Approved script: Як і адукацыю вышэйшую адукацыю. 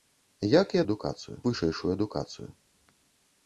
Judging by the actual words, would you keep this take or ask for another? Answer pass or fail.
pass